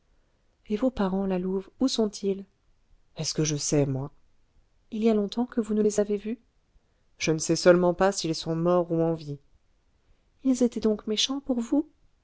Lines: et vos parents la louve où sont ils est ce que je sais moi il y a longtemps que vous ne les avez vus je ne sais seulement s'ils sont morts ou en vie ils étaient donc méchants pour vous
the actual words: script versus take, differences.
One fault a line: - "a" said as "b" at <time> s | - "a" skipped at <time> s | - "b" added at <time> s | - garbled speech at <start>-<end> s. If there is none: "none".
- "pas" added at 7.9 s